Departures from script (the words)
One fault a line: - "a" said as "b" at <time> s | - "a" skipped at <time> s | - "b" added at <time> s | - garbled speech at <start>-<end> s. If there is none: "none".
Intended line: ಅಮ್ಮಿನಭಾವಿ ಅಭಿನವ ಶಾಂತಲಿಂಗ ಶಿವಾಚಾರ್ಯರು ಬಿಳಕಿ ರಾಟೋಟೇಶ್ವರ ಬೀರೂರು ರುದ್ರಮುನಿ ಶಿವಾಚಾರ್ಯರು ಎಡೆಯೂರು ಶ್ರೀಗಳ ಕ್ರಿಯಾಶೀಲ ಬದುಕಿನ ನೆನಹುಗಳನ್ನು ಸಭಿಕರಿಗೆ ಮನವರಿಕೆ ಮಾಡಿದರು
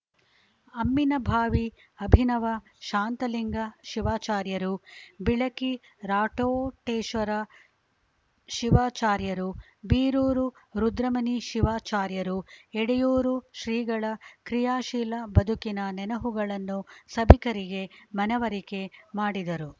- "ಶಿವಾಚಾರ್ಯರು" added at 8.5 s